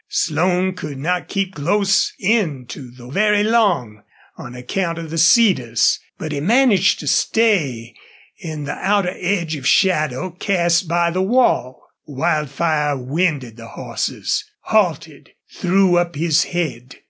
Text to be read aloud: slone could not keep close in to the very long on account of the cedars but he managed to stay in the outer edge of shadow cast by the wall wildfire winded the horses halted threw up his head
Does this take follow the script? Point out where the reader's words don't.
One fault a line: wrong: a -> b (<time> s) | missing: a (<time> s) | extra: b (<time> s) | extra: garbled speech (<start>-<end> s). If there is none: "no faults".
no faults